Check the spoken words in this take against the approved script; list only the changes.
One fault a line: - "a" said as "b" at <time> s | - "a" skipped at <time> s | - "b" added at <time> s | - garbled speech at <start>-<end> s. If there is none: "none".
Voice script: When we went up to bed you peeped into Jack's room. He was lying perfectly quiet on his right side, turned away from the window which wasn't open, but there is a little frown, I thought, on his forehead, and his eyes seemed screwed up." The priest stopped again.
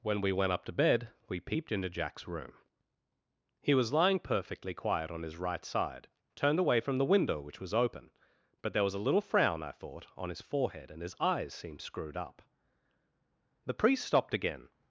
- "you" said as "we" at 1.3 s
- "wasn't" said as "was" at 7.6 s
- "is" said as "was" at 8.8 s